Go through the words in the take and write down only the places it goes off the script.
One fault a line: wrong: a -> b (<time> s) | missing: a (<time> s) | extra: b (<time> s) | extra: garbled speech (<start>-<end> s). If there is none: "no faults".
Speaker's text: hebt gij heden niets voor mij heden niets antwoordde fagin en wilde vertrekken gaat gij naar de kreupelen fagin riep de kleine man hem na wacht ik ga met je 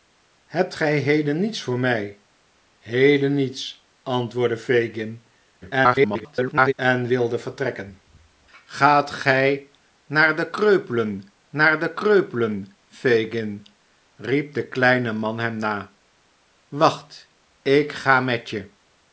extra: garbled speech (5.6-6.7 s)
extra: naar de kreupelen (11.5 s)